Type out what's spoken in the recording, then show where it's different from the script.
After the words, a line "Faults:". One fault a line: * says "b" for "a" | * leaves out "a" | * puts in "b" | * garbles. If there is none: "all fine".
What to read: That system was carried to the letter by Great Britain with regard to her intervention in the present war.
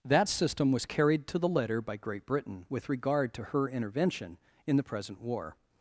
That system was carried to the letter by Great Britain with regard to her intervention in the present war.
Faults:
all fine